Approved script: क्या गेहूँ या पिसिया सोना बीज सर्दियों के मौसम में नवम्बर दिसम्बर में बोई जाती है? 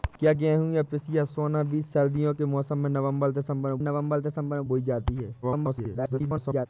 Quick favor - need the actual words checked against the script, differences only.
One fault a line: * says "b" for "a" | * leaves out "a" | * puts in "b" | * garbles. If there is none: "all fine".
* puts in "नवम्बर दिसम्बर में"
* garbles